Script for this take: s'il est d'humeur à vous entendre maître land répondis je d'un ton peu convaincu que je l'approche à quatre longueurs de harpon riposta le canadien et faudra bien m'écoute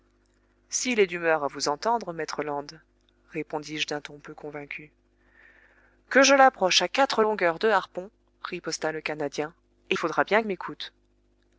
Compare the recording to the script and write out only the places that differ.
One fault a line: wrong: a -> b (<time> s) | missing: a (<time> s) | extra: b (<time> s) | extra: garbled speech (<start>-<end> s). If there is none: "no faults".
no faults